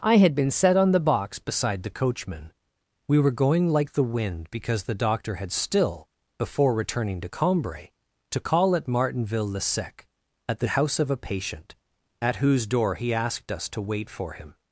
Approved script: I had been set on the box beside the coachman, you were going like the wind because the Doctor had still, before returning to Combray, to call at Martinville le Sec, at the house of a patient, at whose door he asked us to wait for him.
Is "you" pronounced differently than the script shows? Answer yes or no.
yes